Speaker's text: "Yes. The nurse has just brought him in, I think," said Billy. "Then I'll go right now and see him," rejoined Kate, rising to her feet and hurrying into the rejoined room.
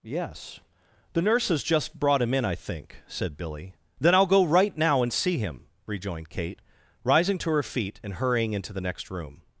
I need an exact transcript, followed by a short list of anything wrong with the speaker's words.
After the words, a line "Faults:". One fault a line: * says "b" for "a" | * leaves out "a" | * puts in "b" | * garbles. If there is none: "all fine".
"Yes. The nurse has just brought him in, I think," said Billy. "Then I'll go right now and see him," rejoined Kate, rising to her feet and hurrying into the next room.
Faults:
* says "next" for "rejoined"